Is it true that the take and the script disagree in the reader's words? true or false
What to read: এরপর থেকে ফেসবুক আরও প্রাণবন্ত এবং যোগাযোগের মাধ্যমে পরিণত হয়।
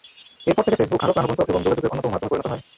true